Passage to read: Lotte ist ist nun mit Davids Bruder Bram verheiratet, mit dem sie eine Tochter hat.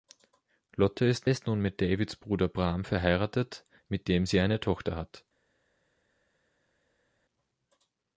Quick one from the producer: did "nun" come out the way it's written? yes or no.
yes